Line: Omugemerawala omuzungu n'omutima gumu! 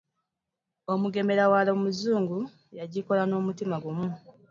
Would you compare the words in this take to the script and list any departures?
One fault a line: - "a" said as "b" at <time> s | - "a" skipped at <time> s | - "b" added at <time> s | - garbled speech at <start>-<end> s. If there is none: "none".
- "yagikola" added at 2.8 s